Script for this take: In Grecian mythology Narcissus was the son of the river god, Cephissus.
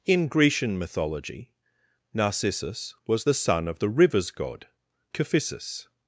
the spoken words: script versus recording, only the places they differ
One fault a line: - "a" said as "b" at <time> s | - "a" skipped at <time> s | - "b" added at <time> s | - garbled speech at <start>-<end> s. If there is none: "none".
- "river" said as "rivers" at 3.9 s